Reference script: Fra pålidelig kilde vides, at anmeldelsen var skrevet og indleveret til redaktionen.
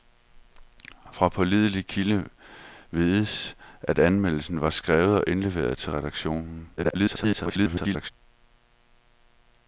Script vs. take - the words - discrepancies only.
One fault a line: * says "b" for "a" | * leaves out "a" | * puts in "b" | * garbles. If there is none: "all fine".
* garbles